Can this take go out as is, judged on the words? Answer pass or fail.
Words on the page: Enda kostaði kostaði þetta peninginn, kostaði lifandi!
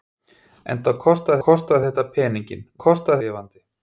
pass